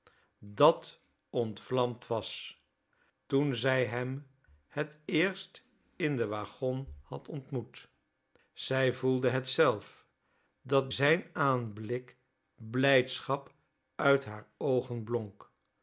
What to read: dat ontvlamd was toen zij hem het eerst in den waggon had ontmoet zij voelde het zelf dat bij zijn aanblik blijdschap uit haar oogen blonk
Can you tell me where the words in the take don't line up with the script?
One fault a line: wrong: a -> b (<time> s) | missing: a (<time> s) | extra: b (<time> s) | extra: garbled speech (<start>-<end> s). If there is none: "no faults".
missing: bij (10.9 s)